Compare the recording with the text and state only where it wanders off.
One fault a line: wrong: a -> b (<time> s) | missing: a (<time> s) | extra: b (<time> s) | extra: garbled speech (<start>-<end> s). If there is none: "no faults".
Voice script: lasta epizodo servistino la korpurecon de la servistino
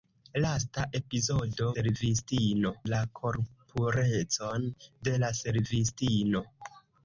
no faults